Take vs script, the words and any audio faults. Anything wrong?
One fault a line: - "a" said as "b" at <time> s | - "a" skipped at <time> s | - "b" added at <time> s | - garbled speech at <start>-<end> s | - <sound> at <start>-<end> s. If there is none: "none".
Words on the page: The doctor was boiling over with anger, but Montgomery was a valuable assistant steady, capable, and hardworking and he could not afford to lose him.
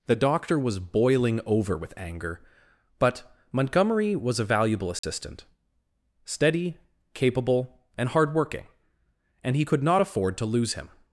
- dropout at 5.0-5.0 s